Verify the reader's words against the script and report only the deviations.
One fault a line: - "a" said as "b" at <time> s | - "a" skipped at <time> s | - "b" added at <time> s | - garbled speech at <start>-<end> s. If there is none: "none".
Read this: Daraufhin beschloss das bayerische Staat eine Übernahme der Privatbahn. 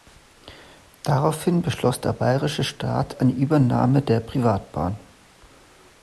- "das" said as "der" at 2.0 s